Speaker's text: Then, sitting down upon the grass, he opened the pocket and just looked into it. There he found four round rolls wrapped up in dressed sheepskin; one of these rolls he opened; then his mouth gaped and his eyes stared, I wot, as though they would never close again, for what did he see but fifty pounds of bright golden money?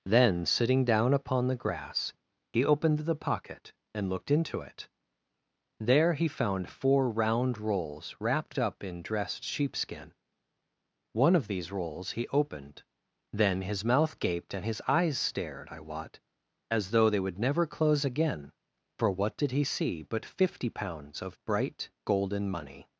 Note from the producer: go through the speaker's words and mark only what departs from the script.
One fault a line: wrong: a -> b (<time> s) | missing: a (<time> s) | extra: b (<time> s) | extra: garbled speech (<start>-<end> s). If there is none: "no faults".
missing: just (4.1 s)